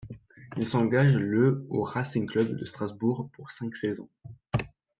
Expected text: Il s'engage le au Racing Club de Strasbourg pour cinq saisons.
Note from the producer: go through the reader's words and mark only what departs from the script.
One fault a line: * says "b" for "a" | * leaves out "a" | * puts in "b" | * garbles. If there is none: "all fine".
all fine